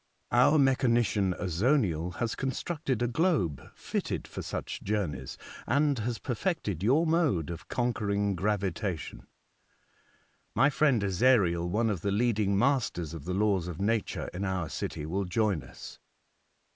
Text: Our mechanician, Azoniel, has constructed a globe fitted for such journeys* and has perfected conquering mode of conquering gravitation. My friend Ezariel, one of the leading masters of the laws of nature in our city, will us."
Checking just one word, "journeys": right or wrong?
right